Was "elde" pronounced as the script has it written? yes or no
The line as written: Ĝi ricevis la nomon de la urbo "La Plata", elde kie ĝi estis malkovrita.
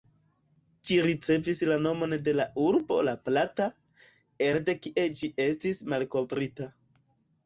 yes